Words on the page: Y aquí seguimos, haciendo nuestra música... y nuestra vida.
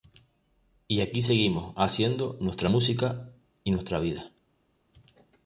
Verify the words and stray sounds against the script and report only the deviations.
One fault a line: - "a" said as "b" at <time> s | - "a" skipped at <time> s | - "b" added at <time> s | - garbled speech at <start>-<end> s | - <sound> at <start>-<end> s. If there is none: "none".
none